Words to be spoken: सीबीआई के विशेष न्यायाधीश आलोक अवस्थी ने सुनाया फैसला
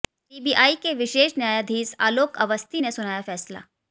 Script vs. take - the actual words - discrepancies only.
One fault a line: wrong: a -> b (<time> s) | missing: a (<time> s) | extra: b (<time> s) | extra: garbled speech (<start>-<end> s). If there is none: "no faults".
no faults